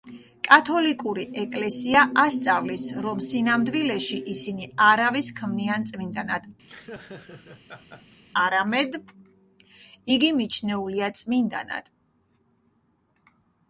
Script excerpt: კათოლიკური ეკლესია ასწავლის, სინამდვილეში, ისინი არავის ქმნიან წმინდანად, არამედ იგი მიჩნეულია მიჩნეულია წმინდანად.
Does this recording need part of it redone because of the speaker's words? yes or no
yes